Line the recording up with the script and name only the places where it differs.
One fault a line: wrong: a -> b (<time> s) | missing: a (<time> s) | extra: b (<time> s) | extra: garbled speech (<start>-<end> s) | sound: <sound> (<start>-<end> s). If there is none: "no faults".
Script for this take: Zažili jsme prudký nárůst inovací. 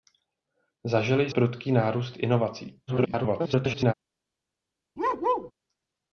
missing: jsme (1.3 s)
extra: garbled speech (2.9-3.9 s)
sound: bark (5.0-5.5 s)